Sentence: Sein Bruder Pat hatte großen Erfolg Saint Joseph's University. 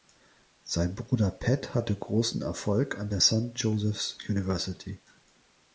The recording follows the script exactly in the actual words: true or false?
false